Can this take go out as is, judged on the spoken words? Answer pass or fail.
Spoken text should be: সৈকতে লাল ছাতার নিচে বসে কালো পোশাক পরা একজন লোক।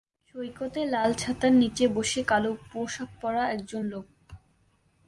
pass